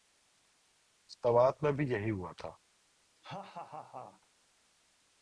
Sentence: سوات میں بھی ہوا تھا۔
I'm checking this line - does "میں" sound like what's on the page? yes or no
yes